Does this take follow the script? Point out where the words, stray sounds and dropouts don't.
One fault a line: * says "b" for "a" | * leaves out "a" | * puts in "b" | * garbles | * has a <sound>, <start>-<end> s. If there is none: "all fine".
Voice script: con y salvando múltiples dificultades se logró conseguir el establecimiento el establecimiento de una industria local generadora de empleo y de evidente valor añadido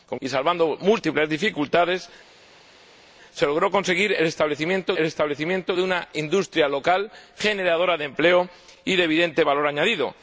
all fine